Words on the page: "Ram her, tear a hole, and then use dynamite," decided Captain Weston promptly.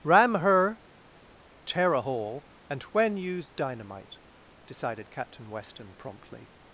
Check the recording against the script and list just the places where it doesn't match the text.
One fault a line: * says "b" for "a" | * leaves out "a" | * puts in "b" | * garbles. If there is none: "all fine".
* says "when" for "then"